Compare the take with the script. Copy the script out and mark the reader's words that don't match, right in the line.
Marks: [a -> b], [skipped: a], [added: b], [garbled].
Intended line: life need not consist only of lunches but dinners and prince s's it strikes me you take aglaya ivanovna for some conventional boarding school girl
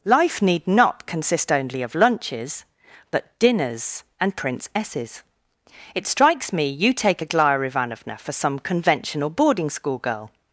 life need not consist only of lunches but dinners and prince s's it strikes me you take aglaya ivanovna for some conventional boarding school girl